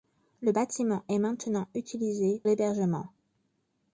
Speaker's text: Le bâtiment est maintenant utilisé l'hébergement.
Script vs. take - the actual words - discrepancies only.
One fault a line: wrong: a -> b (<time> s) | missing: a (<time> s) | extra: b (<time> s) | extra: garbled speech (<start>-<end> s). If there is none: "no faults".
no faults